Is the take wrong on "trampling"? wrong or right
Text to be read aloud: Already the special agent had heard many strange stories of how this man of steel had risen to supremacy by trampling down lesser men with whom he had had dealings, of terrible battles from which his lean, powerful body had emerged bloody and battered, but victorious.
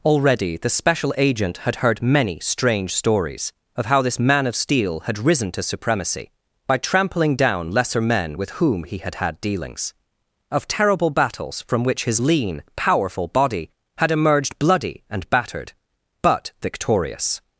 right